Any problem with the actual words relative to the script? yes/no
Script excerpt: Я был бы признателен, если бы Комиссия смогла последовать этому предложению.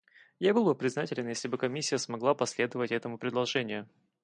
no